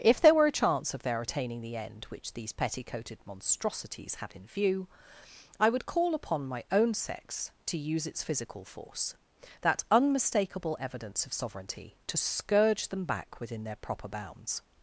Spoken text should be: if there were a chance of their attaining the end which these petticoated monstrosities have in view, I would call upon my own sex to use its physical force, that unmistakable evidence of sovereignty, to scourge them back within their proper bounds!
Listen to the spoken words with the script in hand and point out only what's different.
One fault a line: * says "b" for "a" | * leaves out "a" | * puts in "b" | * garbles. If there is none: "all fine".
* says "had" for "have"